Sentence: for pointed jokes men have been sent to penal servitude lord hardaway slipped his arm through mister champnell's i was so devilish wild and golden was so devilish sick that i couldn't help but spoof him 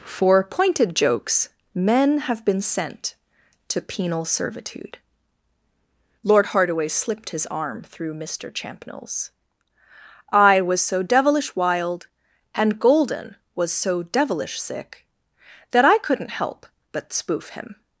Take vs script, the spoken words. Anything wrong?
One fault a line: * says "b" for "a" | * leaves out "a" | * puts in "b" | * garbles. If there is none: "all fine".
all fine